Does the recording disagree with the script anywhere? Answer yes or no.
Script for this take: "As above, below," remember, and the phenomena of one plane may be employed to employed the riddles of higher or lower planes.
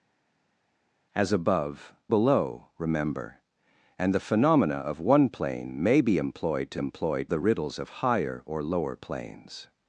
no